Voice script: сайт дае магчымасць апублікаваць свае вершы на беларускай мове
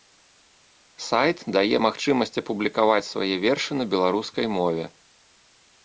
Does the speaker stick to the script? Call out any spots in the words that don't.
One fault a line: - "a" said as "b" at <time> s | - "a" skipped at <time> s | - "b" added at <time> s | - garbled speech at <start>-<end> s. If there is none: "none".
none